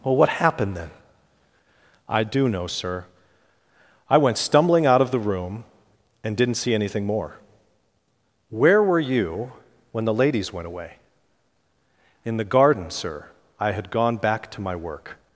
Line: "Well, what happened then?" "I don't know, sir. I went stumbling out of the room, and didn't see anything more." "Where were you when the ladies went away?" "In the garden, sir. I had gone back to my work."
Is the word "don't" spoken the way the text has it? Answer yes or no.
no